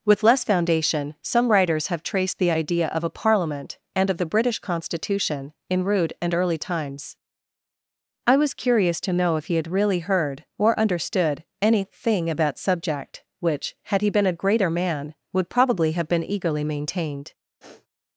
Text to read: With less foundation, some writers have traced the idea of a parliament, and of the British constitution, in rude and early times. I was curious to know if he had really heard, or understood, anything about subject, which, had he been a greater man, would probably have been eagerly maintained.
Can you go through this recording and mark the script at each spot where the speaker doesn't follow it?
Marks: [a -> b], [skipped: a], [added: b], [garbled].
With less foundation, some writers have traced the idea of a parliament, and of the British constitution, in rude and early times. I was curious to know if he had really heard, or understood, anything about subject, which, had he been a greater man, would probably have been eagerly maintained.